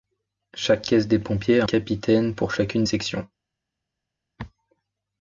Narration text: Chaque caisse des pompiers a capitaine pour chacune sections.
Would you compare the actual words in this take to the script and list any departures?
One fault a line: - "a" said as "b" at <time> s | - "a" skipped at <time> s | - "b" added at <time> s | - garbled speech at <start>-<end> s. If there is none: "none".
none